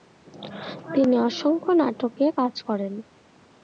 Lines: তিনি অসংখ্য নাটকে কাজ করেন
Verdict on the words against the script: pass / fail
pass